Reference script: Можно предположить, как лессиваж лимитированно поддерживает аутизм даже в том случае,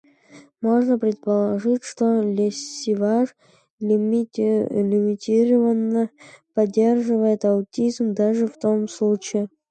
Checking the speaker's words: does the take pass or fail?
fail